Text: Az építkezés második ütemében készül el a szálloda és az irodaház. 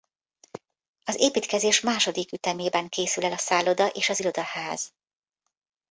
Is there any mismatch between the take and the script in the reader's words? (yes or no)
no